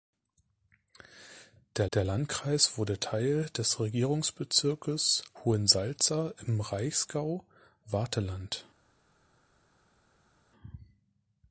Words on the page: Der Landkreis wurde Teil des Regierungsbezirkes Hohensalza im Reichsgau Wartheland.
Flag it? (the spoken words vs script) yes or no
yes